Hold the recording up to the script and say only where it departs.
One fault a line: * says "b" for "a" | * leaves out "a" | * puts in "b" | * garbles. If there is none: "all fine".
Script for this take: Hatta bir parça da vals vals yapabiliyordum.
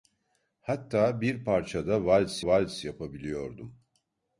all fine